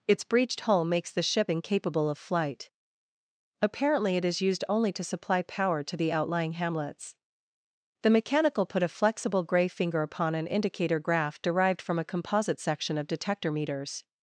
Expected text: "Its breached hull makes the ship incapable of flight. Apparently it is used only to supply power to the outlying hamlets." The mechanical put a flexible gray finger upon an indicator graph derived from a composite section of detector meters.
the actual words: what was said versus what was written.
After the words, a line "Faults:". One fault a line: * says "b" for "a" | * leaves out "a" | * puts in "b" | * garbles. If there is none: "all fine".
"Its breached hull makes the ship incapable of flight. Apparently it is used only to supply power to the outlying hamlets." The mechanical put a flexible gray finger upon an indicator graph derived from a composite section of detector meters.
Faults:
all fine